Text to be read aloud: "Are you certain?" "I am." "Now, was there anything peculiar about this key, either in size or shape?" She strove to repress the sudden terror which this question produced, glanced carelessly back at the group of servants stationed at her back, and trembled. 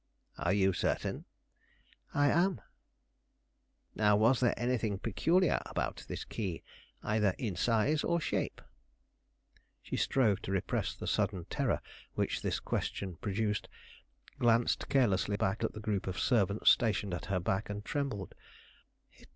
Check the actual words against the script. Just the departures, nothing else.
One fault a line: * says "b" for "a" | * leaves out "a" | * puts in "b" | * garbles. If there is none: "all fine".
all fine